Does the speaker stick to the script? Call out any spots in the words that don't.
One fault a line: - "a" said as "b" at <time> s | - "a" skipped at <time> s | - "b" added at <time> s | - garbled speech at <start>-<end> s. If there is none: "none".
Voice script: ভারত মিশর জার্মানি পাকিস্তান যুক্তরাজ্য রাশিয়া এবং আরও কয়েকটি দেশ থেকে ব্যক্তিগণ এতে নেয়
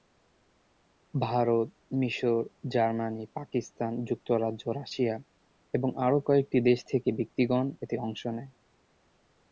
- "অংশ" added at 8.0 s